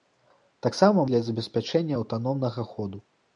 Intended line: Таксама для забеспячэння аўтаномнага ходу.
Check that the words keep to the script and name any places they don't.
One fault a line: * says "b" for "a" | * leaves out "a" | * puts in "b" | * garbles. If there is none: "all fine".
all fine